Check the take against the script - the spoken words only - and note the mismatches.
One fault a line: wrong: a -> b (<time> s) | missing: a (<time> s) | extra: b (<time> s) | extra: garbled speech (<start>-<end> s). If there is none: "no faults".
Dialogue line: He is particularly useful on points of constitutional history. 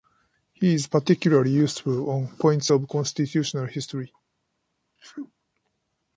no faults